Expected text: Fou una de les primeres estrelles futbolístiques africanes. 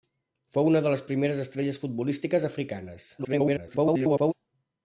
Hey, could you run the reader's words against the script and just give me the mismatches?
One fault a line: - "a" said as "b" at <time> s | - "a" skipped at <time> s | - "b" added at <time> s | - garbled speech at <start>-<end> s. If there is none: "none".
- garbled speech at 3.2-4.3 s